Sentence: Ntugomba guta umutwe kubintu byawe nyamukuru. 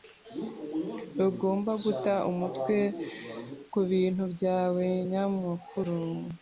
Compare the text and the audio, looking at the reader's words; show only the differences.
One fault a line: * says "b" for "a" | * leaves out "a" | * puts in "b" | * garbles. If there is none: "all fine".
all fine